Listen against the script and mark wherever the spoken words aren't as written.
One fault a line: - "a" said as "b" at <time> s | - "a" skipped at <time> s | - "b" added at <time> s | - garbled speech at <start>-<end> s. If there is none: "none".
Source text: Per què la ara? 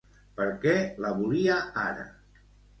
- "volia" added at 1.2 s